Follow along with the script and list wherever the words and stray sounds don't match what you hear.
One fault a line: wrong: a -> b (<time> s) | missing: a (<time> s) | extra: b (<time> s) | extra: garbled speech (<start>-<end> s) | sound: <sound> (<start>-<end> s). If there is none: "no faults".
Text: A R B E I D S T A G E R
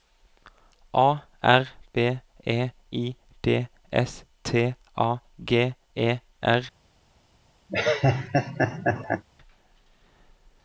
sound: laugh (7.7-9.2 s)